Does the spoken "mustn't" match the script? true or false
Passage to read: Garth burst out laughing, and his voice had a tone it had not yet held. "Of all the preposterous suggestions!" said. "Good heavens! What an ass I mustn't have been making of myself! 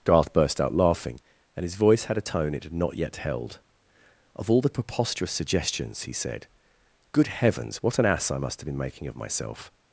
false